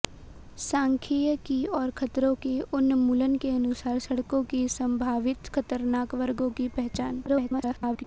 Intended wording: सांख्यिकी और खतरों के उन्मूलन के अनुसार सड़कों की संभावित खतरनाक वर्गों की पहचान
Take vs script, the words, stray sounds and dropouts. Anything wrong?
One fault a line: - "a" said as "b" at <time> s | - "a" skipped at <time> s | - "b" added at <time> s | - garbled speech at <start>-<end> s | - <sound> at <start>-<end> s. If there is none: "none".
- garbled speech at 7.3-8.0 s